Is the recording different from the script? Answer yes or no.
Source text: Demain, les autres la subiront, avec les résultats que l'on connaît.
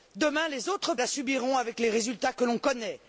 no